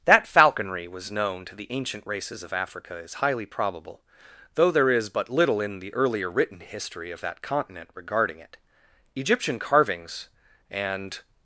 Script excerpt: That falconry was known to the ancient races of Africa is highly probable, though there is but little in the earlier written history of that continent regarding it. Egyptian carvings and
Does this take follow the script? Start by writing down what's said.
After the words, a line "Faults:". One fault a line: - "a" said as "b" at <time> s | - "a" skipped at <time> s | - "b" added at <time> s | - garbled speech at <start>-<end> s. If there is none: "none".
That falconry was known to the ancient races of Africa is highly probable, though there is but little in the earlier written history of that continent regarding it. Egyptian carvings and
Faults:
none